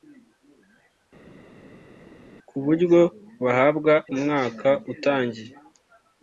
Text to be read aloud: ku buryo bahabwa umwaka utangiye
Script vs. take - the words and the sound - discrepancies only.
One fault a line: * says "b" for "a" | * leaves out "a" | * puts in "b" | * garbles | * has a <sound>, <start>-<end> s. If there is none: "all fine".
all fine